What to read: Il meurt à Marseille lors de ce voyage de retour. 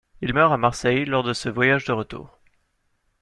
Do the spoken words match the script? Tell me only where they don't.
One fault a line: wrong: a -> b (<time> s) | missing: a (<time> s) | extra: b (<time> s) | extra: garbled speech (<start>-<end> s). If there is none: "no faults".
no faults